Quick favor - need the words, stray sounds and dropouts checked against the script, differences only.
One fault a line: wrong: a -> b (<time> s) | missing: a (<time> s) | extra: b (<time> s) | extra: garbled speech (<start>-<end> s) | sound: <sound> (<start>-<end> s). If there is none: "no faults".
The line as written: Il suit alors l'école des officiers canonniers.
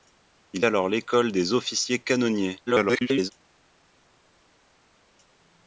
missing: suit (0.7 s)
extra: garbled speech (2.7-3.3 s)